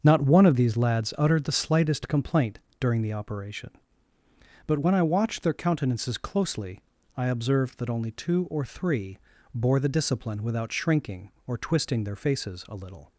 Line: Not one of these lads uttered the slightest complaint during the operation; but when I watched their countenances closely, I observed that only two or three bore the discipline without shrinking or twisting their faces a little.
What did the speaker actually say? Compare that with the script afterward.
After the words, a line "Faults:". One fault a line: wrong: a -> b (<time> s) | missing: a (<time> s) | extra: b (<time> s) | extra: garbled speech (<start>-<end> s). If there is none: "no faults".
Not one of these lads uttered the slightest complaint during the operation; but when I watched their countenances closely, I observed that only two or three bore the discipline without shrinking or twisting their faces a little.
Faults:
no faults